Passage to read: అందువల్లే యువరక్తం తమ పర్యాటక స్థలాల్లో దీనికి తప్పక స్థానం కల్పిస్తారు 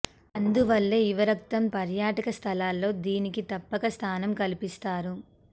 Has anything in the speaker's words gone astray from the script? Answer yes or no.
yes